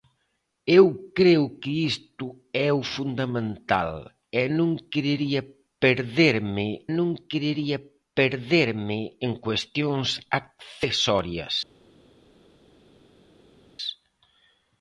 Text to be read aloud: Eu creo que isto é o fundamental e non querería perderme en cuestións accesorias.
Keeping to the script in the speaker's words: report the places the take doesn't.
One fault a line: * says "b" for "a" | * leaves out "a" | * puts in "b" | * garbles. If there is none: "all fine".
* puts in "non querería perderme"